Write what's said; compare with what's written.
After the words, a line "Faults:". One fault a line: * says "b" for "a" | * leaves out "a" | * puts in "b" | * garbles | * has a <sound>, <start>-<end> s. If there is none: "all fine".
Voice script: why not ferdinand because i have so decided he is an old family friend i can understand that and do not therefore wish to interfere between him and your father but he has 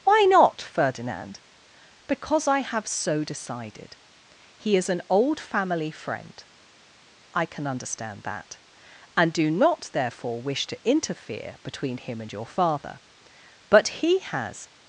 why not ferdinand because i have so decided he is an old family friend i can understand that and do not therefore wish to interfere between him and your father but he has
Faults:
all fine